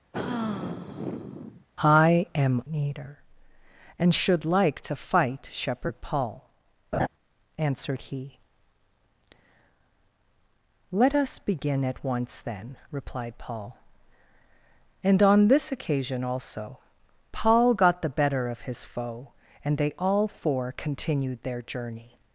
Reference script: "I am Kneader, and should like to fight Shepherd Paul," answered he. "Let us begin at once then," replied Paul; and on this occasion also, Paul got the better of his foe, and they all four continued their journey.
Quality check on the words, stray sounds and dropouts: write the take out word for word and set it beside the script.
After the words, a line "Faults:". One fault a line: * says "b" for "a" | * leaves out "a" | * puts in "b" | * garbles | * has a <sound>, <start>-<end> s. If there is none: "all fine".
"I am Kneader, and should like to fight Shepherd Paul," answered he. "Let us begin at once then," replied Paul; and on this occasion also, Paul got the better of his foe, and they all four continued their journey.
Faults:
* has a sigh, 0.1-1.7 s
* has a laugh, 6.9-7.1 s